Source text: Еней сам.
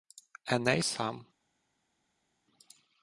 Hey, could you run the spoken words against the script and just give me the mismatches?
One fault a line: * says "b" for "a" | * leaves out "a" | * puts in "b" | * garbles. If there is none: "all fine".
all fine